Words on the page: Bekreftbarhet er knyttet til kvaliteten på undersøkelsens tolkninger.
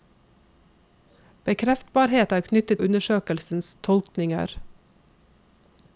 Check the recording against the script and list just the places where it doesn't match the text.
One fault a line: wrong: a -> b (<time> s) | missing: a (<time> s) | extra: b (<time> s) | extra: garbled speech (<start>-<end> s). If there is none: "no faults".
missing: til kvaliteten på (2.8 s)